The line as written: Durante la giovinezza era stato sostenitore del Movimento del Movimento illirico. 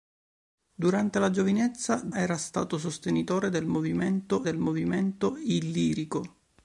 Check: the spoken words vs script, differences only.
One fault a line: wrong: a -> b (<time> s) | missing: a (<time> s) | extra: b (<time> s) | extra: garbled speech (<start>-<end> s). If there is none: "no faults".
no faults